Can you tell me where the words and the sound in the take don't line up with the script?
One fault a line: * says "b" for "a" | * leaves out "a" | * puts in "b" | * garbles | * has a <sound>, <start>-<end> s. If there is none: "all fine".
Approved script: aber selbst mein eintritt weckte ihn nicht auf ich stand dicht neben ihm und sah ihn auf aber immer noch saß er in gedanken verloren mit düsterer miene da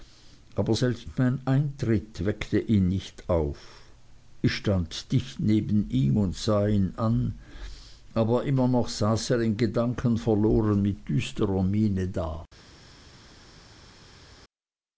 * says "an" for "auf"